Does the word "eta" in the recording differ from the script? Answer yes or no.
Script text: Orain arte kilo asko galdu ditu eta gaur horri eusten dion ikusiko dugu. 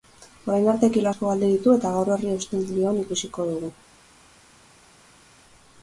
no